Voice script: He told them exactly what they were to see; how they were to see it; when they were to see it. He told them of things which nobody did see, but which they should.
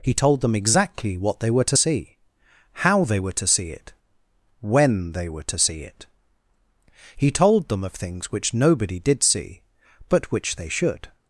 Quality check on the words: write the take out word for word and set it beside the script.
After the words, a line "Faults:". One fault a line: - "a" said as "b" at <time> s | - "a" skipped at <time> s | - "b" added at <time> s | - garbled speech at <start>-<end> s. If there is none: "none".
He told them exactly what they were to see; how they were to see it; when they were to see it. He told them of things which nobody did see, but which they should.
Faults:
none